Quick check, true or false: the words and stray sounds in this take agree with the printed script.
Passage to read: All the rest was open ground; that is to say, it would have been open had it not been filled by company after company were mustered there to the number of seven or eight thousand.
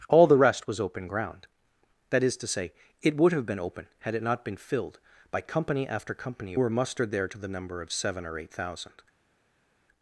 true